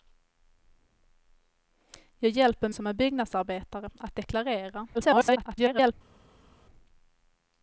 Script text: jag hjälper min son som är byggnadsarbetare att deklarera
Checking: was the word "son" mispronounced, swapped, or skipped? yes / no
yes